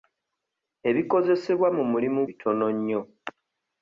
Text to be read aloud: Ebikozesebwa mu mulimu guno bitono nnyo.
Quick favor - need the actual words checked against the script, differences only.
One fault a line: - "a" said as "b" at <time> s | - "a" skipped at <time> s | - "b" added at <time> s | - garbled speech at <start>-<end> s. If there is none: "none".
- "guno" skipped at 2.2 s